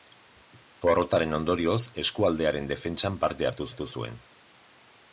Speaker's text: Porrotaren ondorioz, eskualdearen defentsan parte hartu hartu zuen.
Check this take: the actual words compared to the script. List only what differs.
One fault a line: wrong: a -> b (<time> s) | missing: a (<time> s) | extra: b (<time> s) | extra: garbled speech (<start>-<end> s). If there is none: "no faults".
no faults